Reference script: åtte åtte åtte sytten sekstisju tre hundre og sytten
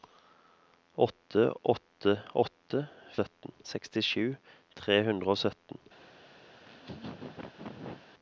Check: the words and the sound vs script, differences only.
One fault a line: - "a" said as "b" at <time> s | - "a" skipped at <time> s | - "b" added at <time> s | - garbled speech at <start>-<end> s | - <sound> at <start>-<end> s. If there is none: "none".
- laugh at 6.6-8.1 s